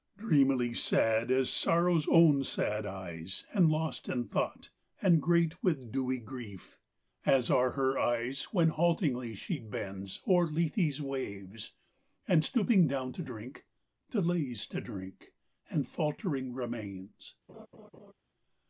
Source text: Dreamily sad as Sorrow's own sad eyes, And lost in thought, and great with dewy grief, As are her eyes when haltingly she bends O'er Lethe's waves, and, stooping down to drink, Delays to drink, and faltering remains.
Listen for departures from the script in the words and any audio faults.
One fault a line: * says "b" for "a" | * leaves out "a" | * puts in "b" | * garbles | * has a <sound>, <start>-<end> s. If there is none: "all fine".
* has a laugh, 17.5-18.1 s